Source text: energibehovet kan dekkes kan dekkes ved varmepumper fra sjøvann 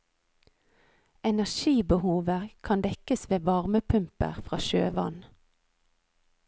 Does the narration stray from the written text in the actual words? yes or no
yes